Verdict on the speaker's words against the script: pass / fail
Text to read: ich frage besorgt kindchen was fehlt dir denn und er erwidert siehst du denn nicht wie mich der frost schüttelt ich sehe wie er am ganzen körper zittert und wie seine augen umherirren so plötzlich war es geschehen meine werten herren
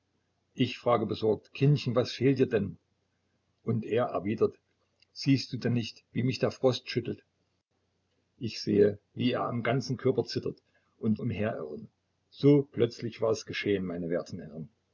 fail